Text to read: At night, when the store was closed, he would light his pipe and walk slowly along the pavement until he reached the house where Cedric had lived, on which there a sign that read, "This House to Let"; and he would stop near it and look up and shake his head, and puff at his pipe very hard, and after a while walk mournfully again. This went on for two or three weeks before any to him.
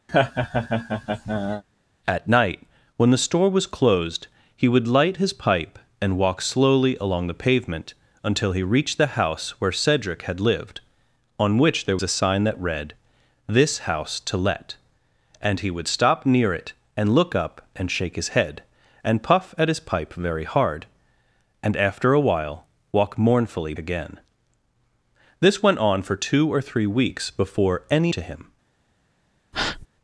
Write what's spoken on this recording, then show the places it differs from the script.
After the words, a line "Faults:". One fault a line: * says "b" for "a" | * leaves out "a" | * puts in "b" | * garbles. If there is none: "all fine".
At night, when the store was closed, he would light his pipe and walk slowly along the pavement until he reached the house where Cedric had lived, on which there a sign that read, "This House to Let"; and he would stop near it and look up and shake his head, and puff at his pipe very hard, and after a while walk mournfully again. This went on for two or three weeks before any to him.
Faults:
all fine